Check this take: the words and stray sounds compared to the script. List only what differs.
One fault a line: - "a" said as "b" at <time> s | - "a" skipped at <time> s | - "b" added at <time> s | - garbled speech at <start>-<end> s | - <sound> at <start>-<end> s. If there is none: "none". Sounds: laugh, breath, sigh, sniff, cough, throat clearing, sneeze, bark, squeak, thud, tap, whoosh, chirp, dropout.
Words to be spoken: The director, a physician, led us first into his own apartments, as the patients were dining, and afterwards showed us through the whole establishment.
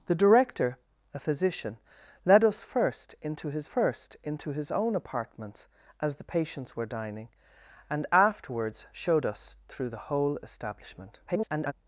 - "first into his" added at 3.6 s
- garbled speech at 11.3-11.7 s